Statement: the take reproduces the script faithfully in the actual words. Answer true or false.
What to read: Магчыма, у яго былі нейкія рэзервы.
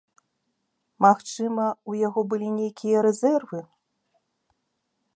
true